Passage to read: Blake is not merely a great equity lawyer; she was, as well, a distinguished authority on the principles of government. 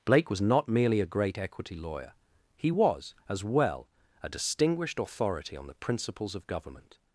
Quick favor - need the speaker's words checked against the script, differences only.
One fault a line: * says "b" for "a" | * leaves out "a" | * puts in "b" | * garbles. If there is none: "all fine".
* says "was" for "is"
* says "he" for "she"